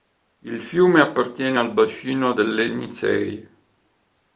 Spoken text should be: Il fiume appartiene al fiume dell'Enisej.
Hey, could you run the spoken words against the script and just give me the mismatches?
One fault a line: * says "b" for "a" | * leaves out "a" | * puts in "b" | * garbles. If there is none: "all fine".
* says "bacino" for "fiume"